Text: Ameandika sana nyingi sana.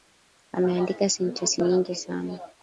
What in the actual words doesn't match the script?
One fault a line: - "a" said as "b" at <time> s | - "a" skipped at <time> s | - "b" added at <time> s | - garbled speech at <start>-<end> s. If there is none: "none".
- "sana" said as "sentensi" at 1.1 s